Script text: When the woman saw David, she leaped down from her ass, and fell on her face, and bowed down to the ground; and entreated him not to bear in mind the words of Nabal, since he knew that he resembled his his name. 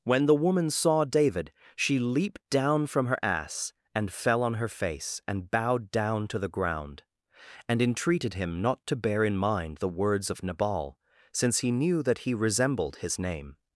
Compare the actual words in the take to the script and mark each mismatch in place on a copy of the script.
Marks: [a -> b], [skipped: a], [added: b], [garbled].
When the woman saw David, she leaped down from her ass, and fell on her face, and bowed down to the ground; and entreated him not to bear in mind the words of Nabal, since he knew that he resembled his [skipped: his] name.